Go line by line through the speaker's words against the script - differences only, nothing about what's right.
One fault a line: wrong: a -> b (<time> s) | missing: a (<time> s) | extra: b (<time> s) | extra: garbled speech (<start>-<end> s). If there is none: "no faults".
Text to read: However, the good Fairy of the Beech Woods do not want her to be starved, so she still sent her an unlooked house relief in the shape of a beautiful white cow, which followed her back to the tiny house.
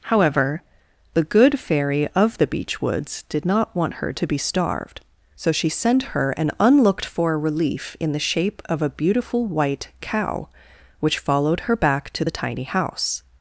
wrong: do -> did (3.3 s)
missing: still (5.7 s)
wrong: house -> for (7.0 s)